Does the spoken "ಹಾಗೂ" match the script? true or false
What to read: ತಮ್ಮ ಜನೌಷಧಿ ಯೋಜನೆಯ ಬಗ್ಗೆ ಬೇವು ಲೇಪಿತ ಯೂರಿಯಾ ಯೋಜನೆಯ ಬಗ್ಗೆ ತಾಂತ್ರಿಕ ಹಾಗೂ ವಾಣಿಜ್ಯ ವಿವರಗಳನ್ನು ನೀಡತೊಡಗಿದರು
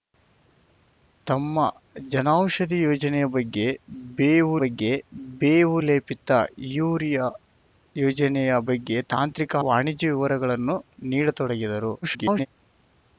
false